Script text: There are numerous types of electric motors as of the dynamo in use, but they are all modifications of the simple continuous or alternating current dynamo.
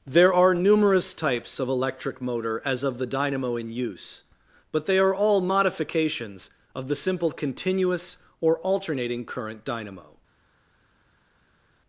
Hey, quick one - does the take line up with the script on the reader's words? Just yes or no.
no